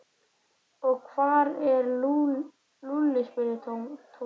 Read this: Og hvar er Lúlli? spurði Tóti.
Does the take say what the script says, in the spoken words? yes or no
yes